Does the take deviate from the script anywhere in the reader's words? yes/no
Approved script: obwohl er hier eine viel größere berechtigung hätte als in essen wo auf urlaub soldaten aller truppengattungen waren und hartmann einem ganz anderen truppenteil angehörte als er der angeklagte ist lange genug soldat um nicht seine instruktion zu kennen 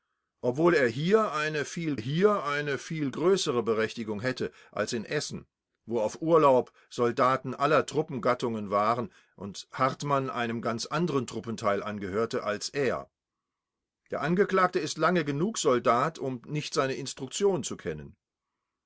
yes